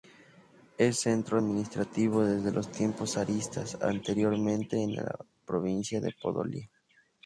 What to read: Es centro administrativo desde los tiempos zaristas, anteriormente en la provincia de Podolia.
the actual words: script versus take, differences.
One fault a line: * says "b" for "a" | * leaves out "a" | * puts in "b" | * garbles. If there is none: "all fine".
all fine